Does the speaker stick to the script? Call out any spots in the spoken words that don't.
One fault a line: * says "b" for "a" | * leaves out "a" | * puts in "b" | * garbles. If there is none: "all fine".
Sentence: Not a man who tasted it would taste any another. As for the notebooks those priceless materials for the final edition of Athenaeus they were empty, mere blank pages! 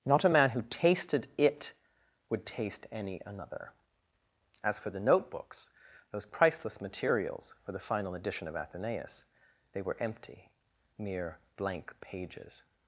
all fine